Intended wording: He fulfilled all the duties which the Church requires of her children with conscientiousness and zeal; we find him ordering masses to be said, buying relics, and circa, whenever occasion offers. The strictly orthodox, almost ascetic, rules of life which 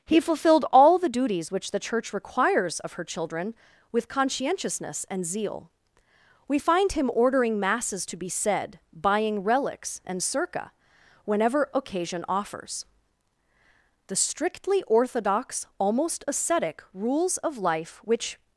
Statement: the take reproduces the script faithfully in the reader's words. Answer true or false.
true